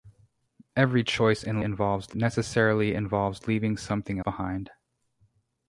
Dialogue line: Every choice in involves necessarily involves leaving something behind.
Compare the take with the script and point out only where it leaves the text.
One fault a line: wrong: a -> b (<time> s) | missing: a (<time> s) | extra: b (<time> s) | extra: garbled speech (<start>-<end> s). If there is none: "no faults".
no faults